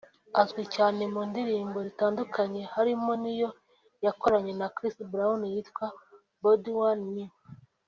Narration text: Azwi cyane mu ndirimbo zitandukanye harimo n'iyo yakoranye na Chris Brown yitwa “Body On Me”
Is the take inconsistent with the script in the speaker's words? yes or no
no